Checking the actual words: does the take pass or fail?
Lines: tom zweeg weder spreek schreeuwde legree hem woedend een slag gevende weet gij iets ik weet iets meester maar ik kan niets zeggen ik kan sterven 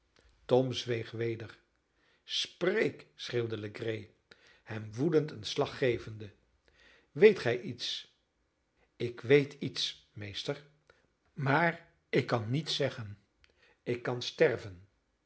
pass